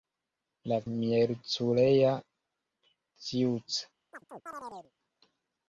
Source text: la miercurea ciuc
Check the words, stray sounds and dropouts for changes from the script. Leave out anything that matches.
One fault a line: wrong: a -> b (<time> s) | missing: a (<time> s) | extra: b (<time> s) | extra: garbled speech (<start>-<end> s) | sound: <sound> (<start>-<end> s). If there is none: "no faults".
sound: chirp (4.1-4.9 s)